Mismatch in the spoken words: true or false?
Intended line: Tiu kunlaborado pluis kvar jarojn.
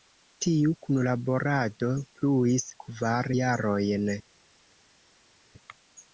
false